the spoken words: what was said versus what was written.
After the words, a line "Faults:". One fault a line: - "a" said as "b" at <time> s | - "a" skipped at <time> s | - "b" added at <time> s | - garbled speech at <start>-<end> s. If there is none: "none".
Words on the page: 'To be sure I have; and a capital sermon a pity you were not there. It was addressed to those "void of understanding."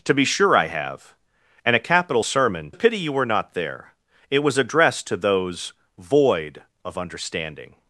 'To be sure I have; and a capital sermon a pity you were not there. It was addressed to those "void of understanding."
Faults:
none